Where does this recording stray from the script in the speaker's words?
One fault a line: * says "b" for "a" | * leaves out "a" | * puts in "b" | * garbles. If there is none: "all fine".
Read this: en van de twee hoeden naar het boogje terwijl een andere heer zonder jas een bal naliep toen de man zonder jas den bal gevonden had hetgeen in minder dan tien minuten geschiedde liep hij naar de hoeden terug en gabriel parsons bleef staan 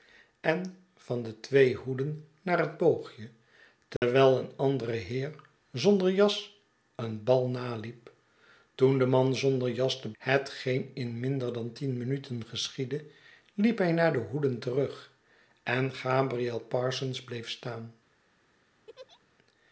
* leaves out "bal gevonden had"